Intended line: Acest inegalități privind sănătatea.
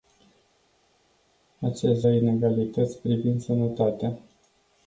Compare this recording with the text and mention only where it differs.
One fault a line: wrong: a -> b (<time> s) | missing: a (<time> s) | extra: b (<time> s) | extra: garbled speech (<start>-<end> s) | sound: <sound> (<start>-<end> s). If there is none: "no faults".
no faults